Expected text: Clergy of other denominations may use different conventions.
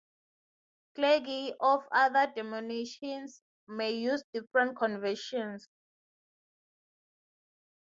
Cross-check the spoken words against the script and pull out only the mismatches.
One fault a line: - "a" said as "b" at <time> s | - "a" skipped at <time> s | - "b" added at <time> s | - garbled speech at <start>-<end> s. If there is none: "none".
none